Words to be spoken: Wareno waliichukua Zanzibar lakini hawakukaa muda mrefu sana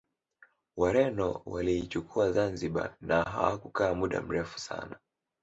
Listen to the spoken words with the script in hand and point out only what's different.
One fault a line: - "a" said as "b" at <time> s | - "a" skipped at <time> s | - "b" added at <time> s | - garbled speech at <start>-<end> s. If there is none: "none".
- "lakini" said as "na" at 3.0 s